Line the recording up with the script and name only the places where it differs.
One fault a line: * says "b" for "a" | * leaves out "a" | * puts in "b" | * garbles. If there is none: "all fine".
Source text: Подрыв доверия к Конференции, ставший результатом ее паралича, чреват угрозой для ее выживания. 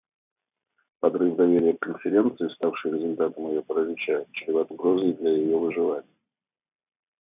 all fine